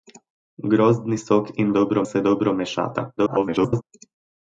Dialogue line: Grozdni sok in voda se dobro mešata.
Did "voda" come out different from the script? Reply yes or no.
yes